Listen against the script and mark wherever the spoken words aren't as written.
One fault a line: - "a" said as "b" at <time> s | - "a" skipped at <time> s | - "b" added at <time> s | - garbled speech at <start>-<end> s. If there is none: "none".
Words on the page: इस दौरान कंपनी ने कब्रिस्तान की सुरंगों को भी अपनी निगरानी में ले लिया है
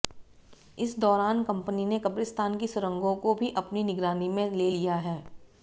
none